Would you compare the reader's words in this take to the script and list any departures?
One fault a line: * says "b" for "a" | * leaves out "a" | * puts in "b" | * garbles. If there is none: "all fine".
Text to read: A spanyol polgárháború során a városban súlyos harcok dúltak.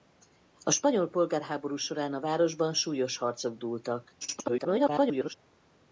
* garbles